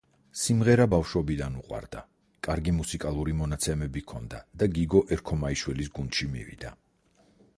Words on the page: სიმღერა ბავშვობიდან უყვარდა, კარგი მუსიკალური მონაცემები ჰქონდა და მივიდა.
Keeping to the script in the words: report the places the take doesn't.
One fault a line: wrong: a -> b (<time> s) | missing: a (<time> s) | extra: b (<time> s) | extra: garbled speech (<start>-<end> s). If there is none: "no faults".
extra: გიგო ერქომაიშვილის გუნდში (4.8 s)